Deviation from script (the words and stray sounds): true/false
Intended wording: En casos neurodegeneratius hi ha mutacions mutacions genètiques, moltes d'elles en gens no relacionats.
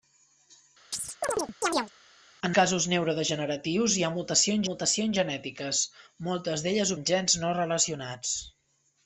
true